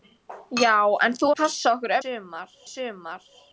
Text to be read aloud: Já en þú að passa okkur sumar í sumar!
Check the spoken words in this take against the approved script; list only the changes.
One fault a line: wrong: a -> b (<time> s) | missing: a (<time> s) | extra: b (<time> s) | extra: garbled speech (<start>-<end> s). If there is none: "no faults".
no faults